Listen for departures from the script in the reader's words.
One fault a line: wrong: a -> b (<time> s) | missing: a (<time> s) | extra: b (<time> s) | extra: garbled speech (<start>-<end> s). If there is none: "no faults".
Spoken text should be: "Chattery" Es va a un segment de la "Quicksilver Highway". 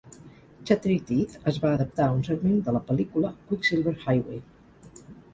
extra: Teeth (1.1 s)
extra: adaptar (1.8 s)
extra: pel·lícula (2.9 s)